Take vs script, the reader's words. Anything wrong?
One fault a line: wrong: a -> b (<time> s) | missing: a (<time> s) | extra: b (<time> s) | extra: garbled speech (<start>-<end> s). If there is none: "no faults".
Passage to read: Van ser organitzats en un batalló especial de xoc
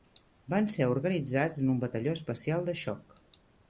no faults